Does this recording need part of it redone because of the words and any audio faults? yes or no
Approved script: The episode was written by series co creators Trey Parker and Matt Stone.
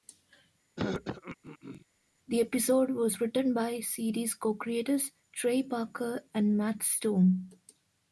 yes